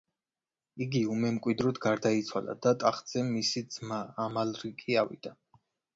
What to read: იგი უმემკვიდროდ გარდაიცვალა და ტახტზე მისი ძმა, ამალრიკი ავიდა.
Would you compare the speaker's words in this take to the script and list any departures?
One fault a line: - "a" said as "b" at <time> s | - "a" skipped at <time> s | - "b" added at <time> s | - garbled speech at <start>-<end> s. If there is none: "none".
none